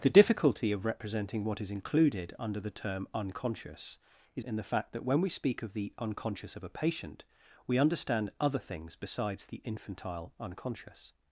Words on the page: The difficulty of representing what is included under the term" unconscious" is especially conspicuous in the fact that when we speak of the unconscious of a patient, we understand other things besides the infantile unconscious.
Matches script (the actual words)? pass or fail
fail